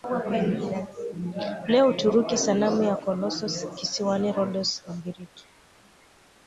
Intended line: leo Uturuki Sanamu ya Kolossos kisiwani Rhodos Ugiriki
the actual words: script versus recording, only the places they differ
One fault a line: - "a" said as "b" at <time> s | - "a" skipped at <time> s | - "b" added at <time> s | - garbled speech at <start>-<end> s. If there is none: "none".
none